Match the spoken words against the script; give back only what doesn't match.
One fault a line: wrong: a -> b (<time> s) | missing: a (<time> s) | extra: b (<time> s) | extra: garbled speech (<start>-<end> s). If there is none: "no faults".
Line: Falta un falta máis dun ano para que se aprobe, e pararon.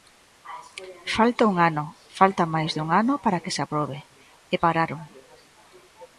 extra: ano (1.7 s)